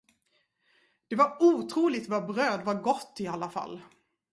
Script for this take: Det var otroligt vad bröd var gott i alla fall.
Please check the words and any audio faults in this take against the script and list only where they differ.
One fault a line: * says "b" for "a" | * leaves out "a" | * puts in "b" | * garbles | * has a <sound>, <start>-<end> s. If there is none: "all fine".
all fine